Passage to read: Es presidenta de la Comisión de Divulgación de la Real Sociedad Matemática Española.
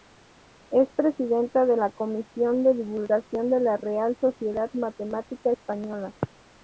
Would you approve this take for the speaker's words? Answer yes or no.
yes